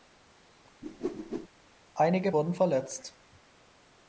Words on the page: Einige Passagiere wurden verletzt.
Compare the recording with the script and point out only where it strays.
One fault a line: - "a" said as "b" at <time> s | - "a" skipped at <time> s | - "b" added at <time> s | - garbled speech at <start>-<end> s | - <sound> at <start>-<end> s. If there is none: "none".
- whoosh at 0.8-1.5 s
- "Passagiere" skipped at 2.3 s